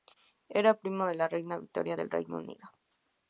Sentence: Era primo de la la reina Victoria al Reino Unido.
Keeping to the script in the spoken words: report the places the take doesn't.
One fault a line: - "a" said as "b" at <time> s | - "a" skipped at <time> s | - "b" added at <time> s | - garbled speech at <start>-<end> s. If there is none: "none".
- "la" skipped at 1.3 s
- "al" said as "del" at 1.9 s